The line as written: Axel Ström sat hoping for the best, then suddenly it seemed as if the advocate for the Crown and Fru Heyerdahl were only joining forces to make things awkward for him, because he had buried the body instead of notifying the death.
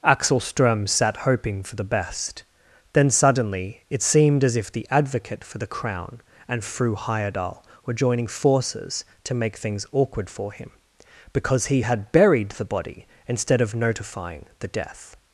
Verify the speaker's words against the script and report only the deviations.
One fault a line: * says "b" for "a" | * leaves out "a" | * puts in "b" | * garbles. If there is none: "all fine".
* leaves out "only"